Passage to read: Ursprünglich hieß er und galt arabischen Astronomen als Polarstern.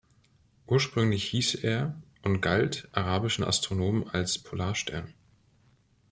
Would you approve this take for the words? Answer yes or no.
yes